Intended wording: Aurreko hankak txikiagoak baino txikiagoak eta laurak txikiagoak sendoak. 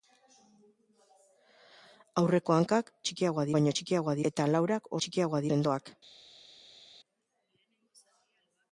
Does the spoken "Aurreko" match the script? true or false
true